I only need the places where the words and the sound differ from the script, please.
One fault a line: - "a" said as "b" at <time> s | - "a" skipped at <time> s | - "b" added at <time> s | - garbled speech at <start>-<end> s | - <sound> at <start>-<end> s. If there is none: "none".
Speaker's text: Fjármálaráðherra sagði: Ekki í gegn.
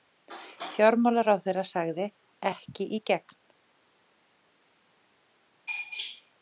none